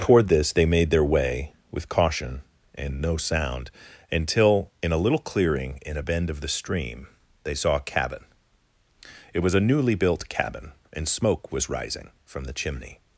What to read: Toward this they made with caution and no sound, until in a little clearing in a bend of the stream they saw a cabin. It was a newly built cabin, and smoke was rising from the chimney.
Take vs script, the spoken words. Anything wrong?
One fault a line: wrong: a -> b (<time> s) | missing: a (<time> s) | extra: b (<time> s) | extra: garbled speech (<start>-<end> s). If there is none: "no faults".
extra: their way (0.9 s)